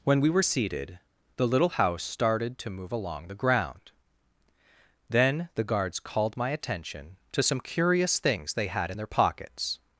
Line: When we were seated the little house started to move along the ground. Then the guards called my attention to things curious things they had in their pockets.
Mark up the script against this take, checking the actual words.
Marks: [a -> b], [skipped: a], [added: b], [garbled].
When we were seated the little house started to move along the ground. Then the guards called my attention to [things -> some] curious things they had in their pockets.